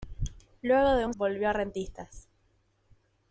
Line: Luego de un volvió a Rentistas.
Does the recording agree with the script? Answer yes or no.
yes